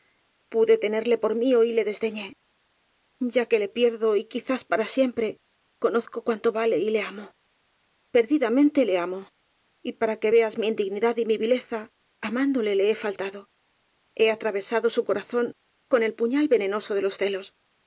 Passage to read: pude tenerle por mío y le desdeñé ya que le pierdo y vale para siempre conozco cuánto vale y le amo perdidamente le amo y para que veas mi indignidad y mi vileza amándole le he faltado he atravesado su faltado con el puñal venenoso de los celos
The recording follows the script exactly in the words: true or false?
false